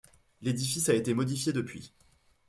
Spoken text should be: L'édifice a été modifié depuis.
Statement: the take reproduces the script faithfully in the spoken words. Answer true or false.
true